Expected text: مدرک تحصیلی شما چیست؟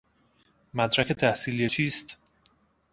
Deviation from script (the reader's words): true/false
true